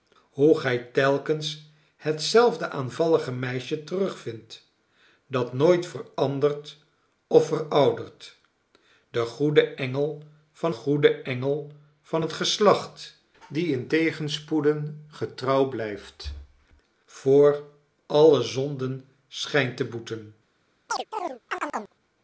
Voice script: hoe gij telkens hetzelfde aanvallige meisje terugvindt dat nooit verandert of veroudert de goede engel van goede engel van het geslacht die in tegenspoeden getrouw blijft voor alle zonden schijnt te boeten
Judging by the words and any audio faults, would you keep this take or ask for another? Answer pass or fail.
fail